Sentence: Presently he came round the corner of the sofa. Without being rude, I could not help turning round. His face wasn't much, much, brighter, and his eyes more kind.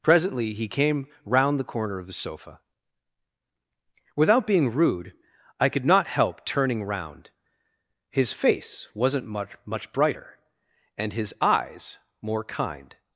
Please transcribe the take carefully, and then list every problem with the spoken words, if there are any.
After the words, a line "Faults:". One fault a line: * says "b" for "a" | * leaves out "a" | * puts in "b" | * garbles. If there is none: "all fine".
Presently he came round the corner of the sofa. Without being rude, I could not help turning round. His face wasn't much, much, brighter, and his eyes more kind.
Faults:
all fine